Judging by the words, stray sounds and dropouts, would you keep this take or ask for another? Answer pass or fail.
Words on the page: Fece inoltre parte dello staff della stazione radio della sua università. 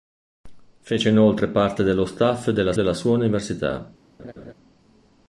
fail